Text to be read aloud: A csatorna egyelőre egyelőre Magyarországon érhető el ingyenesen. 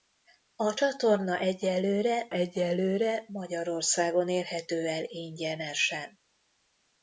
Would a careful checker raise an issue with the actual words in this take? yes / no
no